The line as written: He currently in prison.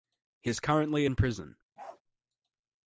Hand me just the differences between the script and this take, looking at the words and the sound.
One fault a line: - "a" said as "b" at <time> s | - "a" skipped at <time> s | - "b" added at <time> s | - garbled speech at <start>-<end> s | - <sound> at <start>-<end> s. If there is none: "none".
- "is" added at 0.5 s
- bark at 1.8-2.0 s